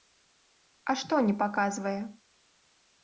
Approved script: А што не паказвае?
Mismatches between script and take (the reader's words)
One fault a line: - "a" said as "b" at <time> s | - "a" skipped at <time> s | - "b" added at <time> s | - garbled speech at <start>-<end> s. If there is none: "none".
none